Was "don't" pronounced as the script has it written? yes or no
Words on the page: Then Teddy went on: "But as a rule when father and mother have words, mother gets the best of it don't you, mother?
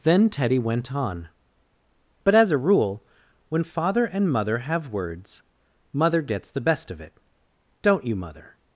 yes